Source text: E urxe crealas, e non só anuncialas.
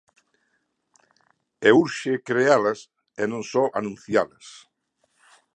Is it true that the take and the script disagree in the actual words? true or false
false